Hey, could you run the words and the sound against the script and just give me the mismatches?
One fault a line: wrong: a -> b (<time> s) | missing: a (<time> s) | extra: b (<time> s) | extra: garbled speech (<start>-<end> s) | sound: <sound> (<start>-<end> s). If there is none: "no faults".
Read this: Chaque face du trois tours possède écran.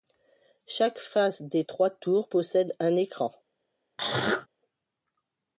wrong: du -> des (1.4 s)
extra: un (2.8 s)
sound: throat clearing (4.0-4.5 s)